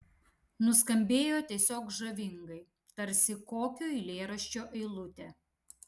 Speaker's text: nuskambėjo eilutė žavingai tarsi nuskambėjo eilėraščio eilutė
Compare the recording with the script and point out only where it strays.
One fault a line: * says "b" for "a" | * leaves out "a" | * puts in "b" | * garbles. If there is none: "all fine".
* says "tiesiog" for "eilutė"
* says "kokio" for "nuskambėjo"